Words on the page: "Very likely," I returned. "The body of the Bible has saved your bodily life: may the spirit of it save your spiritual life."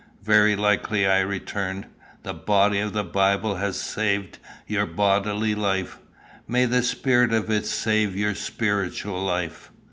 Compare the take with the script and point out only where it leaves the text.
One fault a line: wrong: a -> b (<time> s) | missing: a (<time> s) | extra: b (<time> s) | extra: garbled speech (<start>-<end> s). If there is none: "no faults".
no faults